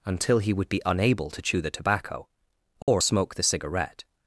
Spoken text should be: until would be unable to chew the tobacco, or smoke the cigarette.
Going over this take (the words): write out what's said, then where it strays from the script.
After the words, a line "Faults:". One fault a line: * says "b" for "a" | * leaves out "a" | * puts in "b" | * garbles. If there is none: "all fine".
until he would be unable to chew the tobacco, or smoke the cigarette.
Faults:
* puts in "he"